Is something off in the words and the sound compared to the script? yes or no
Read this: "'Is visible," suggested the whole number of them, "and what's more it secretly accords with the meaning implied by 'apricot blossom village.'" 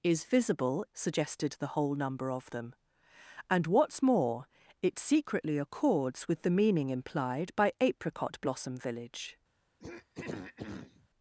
yes